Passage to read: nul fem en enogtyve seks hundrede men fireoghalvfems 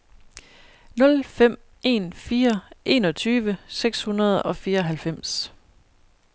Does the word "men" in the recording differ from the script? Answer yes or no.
yes